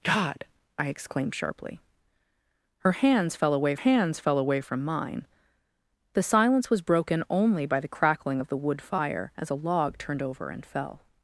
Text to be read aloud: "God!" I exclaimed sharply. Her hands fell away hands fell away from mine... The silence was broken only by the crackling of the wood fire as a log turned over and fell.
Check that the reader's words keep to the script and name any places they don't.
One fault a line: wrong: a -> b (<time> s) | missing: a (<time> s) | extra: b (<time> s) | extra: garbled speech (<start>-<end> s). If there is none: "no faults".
no faults